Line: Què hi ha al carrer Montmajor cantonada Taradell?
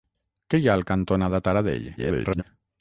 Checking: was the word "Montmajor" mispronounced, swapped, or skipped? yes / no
yes